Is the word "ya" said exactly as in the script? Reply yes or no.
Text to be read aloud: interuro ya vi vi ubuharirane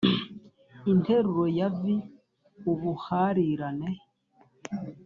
yes